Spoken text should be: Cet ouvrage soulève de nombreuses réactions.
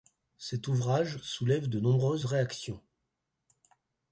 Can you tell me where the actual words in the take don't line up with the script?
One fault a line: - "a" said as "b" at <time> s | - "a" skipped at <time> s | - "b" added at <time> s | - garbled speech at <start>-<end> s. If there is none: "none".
none